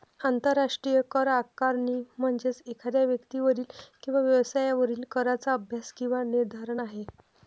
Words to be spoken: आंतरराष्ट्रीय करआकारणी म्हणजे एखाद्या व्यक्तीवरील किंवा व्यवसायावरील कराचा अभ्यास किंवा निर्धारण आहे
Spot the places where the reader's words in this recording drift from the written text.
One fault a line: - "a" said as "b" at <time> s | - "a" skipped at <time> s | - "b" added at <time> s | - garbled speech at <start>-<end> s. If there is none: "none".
none